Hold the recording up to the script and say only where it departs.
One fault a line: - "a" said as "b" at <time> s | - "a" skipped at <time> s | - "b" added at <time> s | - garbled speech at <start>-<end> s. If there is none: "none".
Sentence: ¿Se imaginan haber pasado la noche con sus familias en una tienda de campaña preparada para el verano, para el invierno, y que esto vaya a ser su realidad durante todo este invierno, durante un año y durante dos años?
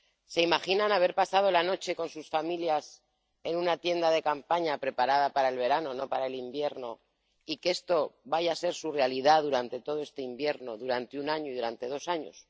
- "no" added at 5.9 s